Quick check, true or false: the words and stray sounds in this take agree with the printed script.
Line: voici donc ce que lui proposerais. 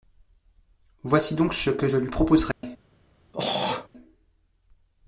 false